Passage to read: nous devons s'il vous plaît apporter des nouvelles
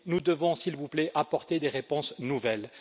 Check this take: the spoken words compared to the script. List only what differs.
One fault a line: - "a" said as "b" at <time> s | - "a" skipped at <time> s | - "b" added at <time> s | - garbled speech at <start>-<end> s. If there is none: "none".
- "réponses" added at 1.7 s